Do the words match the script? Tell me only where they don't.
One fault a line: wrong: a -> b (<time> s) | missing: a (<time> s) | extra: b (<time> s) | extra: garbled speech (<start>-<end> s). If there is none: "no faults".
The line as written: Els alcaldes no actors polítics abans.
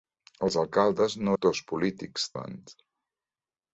no faults